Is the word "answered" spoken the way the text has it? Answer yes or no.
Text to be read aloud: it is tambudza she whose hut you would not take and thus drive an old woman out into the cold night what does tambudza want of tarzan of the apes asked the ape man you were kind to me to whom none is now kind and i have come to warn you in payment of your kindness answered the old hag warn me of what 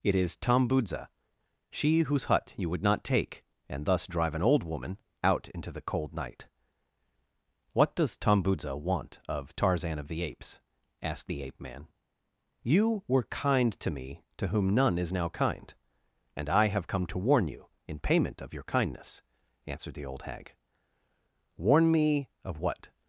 yes